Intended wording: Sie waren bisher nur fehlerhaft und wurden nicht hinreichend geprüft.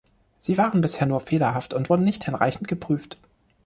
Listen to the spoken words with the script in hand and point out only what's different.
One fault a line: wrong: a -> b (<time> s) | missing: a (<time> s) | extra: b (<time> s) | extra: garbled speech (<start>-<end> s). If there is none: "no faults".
no faults